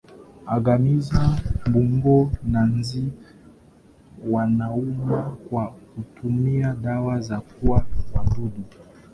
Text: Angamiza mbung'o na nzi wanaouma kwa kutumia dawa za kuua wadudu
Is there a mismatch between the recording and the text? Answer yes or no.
no